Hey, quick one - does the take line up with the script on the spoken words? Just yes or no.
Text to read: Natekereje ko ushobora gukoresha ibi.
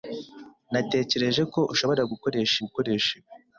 no